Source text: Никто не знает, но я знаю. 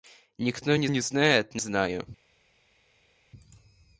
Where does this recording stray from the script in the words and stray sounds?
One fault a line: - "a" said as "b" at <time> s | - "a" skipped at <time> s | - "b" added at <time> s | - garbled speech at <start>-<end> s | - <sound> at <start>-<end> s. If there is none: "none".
- "не" added at 0.9 s
- "я" skipped at 1.6 s